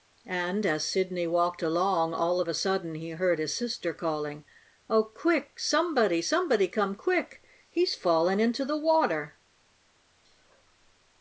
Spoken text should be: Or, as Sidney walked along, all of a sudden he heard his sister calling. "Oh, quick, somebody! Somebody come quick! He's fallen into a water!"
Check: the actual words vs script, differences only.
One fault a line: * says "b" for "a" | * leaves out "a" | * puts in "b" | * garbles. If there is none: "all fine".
* says "And" for "Or"
* says "the" for "a"